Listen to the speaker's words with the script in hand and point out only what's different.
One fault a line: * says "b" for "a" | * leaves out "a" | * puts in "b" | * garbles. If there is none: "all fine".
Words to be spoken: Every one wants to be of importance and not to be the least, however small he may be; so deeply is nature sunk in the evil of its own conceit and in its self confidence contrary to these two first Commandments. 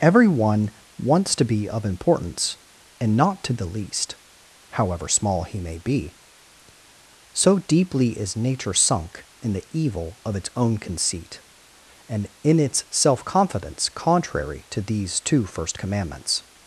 * leaves out "be"